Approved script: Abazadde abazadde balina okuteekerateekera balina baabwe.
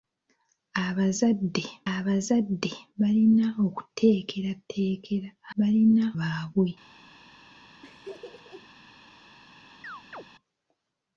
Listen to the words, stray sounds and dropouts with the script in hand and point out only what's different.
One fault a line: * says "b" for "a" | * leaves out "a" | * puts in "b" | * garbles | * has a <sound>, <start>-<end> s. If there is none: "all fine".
* has a laugh, 7.8-8.7 s
* has a chirp, 9.8-10.2 s